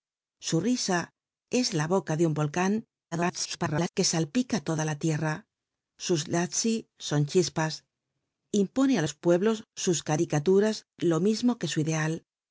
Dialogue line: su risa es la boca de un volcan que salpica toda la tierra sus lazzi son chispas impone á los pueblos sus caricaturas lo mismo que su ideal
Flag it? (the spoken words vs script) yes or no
yes